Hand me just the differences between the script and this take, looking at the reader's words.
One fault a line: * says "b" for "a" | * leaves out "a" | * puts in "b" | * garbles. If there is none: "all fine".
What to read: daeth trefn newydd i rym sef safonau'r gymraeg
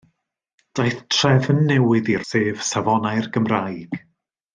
* leaves out "rym"